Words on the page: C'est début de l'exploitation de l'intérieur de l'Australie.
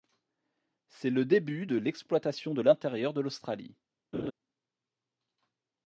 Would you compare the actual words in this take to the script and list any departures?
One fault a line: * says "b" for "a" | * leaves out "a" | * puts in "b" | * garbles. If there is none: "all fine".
* puts in "le"